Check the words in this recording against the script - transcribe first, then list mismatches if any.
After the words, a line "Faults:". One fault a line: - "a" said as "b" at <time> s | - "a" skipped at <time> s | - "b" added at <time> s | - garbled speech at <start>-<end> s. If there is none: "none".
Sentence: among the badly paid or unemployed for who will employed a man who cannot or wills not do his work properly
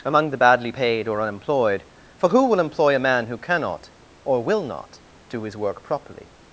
among the badly paid or unemployed for who will employ a man who cannot or will not do his work properly
Faults:
- "employed" said as "employ" at 2.6 s
- "wills" said as "will" at 4.4 s